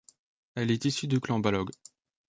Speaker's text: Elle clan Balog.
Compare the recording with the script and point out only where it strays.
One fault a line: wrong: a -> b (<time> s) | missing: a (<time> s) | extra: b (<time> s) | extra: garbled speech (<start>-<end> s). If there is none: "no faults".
extra: est issue du (0.7 s)